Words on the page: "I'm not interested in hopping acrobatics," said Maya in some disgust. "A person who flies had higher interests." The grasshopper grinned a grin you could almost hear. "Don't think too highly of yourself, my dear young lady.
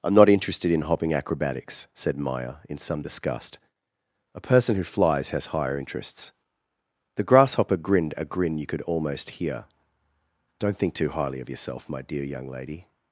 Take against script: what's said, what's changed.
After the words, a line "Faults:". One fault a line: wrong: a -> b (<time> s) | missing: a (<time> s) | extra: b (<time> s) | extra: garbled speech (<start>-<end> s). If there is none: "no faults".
"I'm not interested in hopping acrobatics," said Maya in some disgust. "A person who flies has higher interests." The grasshopper grinned a grin you could almost hear. "Don't think too highly of yourself, my dear young lady.
Faults:
wrong: had -> has (5.3 s)